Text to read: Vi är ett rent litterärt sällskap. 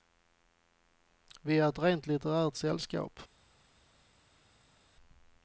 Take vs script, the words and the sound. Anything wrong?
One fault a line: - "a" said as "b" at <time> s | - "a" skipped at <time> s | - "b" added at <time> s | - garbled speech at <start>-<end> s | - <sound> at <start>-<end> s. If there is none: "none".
none